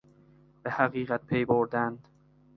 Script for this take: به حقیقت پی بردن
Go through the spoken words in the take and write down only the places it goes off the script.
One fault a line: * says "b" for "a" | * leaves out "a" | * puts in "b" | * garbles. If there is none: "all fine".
all fine